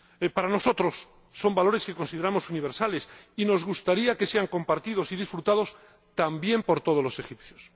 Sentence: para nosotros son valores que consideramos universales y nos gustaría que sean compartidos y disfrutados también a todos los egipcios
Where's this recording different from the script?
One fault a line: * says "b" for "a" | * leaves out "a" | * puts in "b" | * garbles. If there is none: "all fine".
* says "por" for "a"